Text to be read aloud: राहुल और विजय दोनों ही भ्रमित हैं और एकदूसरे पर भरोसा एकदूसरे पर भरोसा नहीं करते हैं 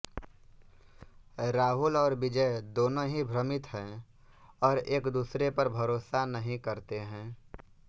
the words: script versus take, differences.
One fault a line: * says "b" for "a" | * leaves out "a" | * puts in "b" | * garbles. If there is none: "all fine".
* leaves out "एकदूसरे पर भरोसा"